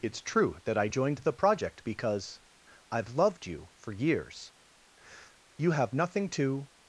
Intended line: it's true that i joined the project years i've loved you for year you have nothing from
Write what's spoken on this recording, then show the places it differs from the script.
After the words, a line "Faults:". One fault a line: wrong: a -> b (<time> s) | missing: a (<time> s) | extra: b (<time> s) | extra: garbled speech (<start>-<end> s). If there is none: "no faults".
it's true that i joined the project because i've loved you for years you have nothing to
Faults:
wrong: years -> because (1.8 s)
wrong: year -> years (3.9 s)
wrong: from -> to (6.3 s)